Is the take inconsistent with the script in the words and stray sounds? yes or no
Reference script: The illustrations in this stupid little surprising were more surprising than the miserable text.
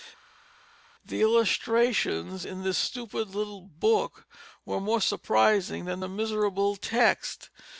yes